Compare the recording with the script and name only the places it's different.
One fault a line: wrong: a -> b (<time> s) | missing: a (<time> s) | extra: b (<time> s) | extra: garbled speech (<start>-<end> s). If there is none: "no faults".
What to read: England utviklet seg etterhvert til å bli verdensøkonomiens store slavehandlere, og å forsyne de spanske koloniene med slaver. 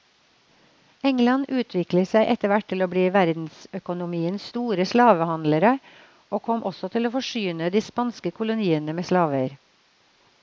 extra: kom også til (6.5 s)